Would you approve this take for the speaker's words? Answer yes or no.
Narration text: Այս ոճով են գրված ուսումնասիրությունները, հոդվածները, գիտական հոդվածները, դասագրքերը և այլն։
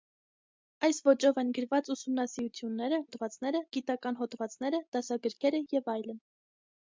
yes